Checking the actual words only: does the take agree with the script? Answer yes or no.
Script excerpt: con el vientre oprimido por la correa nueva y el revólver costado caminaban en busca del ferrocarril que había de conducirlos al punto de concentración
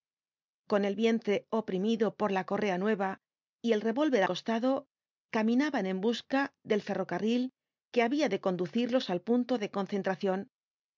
yes